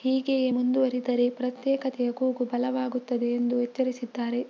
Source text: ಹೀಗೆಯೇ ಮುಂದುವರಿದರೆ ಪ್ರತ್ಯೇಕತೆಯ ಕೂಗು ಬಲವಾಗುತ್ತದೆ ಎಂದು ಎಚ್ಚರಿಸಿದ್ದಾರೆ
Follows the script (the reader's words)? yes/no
yes